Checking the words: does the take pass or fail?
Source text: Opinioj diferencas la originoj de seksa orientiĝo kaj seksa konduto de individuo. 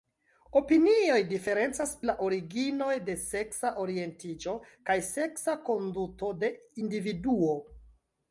pass